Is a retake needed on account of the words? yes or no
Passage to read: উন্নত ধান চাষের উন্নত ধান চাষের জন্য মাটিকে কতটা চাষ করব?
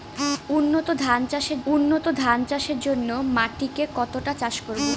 no